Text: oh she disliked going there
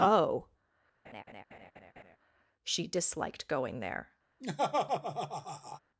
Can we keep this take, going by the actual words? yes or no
yes